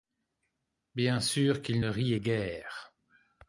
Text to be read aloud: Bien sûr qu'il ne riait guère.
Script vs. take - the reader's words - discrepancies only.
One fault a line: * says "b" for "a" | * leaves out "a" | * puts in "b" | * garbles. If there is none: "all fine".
all fine